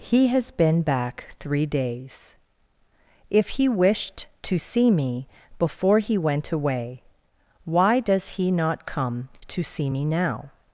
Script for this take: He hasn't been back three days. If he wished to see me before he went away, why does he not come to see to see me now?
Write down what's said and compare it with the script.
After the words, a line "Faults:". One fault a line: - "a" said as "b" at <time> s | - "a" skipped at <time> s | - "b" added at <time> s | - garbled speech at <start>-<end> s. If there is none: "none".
He has been back three days. If he wished to see me before he went away, why does he not come to see me now?
Faults:
- "hasn't" said as "has" at 0.3 s
- "to see" skipped at 9.9 s